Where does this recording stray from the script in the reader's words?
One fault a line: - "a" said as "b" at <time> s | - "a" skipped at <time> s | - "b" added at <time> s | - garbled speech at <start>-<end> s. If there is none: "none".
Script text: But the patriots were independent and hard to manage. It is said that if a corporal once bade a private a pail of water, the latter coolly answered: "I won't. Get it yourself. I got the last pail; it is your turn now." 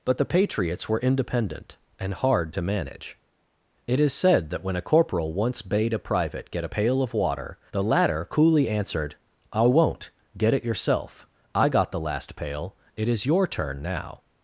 - "if" said as "when" at 4.6 s
- "get" added at 6.5 s